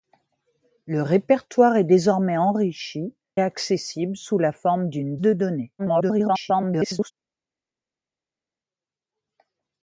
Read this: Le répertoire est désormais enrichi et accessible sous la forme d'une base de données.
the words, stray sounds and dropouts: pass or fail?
fail